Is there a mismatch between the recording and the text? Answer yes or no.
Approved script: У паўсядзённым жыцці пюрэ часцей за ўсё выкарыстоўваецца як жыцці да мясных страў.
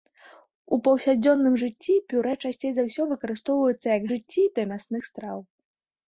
no